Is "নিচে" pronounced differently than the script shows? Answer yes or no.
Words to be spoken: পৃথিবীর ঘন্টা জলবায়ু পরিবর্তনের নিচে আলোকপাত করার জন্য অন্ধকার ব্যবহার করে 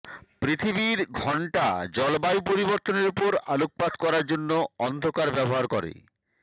yes